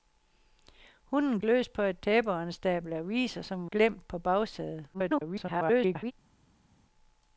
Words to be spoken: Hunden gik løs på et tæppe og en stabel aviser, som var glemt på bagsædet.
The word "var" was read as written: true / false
false